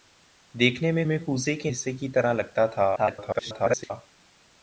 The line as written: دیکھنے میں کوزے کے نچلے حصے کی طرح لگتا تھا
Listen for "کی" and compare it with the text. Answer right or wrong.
right